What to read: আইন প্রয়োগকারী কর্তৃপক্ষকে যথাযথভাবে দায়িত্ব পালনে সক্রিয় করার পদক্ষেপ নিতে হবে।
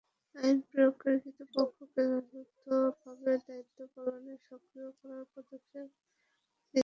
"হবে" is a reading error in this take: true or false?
false